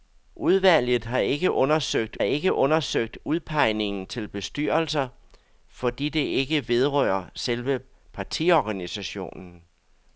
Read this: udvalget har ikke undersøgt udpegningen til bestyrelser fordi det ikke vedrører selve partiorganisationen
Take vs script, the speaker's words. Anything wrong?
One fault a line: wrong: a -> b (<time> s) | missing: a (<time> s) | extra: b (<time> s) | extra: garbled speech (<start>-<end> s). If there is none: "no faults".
extra: ikke undersøgt (2.2 s)